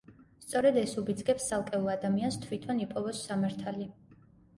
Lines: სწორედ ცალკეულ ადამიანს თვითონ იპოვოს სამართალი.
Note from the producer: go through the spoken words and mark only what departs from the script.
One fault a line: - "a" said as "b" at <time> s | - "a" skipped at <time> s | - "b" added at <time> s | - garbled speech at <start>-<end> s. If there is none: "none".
- "ეს უბიძგებს" added at 0.8 s